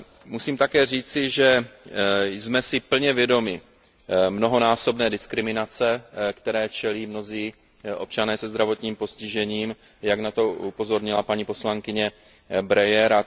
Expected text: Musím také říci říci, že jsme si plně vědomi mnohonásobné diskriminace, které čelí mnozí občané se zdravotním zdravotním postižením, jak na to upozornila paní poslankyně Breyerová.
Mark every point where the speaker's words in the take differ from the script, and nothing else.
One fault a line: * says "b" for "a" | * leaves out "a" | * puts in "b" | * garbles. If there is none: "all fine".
* leaves out "říci"
* leaves out "zdravotním"